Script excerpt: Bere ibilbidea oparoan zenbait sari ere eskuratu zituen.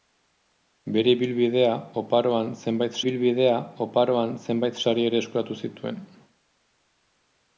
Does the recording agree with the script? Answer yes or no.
no